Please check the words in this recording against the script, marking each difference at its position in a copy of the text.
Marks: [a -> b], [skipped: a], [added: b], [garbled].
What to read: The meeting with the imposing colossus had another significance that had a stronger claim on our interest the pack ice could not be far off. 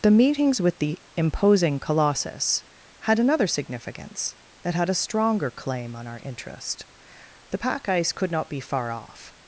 The [meeting -> meetings] with the imposing colossus had another significance that had a stronger claim on our interest the pack ice could not be far off.